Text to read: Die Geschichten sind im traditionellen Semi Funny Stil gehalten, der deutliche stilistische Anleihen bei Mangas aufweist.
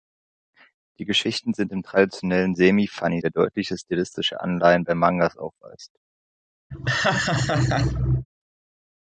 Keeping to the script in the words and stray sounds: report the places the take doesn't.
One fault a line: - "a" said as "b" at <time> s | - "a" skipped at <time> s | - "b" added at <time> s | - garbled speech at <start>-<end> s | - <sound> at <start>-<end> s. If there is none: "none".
- "Stil gehalten" skipped at 3.2 s
- laugh at 6.7-8.3 s